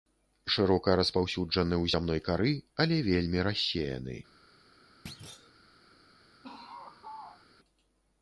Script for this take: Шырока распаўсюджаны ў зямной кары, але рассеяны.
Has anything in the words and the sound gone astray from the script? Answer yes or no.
yes